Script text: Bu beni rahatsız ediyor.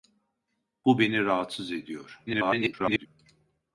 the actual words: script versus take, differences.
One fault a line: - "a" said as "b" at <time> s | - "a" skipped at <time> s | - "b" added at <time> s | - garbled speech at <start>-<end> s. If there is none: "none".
- garbled speech at 2.3-3.1 s